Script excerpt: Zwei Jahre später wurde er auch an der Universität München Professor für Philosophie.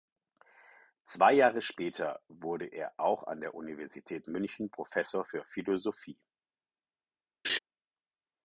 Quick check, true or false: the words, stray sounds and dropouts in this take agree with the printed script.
false